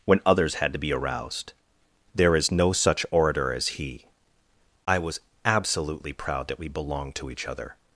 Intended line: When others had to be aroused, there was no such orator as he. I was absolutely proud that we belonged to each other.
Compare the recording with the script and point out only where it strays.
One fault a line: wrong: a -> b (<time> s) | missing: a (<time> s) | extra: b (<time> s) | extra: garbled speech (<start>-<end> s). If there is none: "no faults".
wrong: was -> is (2.4 s)